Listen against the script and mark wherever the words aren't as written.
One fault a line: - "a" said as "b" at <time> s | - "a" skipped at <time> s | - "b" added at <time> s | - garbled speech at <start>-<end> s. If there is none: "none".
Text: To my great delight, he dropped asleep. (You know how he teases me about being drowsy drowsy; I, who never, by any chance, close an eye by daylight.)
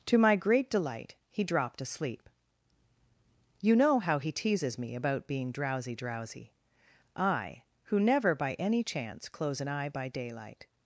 none